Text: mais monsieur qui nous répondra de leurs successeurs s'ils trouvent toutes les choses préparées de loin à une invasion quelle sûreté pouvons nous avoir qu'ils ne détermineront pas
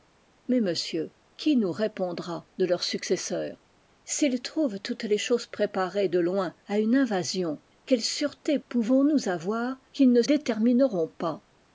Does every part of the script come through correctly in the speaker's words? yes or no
yes